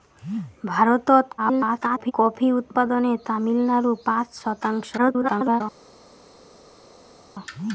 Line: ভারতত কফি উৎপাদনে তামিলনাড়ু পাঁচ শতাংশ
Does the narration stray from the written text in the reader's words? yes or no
yes